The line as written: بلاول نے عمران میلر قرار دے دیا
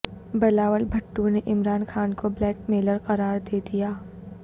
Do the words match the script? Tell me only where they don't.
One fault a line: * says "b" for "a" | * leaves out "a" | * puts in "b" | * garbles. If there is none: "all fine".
* puts in "بھٹو"
* puts in "خان کو بلیک"